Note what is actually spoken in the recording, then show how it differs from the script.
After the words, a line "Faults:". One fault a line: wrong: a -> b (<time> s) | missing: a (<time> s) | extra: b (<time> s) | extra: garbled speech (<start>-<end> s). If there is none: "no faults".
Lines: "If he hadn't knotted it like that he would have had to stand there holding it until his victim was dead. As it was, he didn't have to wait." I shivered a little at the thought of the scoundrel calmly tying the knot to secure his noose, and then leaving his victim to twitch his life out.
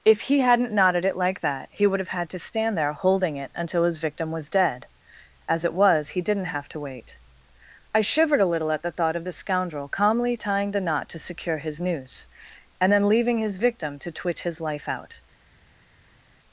"If he hadn't knotted it like that he would have had to stand there holding it until his victim was dead. As it was, he didn't have to wait." I shivered a little at the thought of the scoundrel calmly tying the knot to secure his noose, and then leaving his victim to twitch his life out.
Faults:
no faults